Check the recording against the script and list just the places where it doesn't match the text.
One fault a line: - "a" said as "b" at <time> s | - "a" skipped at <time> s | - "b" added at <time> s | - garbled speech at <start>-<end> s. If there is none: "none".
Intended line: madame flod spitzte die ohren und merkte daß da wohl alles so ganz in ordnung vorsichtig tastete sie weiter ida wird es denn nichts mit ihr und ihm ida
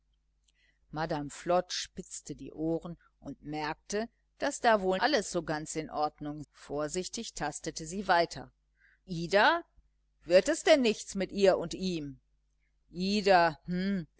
none